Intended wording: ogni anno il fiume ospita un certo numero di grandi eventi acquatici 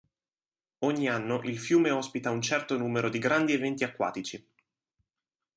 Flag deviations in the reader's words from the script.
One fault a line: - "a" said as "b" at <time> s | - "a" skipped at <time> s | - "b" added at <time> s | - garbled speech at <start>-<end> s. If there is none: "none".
none